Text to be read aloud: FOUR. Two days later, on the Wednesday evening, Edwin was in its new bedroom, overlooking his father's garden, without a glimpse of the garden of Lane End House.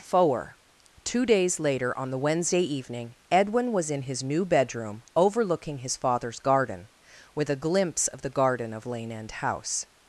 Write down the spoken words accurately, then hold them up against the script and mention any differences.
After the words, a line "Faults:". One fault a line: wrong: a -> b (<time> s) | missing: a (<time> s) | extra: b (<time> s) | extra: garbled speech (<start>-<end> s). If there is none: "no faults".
FOUR. Two days later, on the Wednesday evening, Edwin was in his new bedroom, overlooking his father's garden, with a glimpse of the garden of Lane End House.
Faults:
wrong: its -> his (4.0 s)
wrong: without -> with (7.3 s)